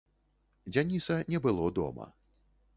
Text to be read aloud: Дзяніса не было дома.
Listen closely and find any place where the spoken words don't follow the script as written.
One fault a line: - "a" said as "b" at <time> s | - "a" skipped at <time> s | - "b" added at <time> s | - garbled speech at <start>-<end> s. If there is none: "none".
none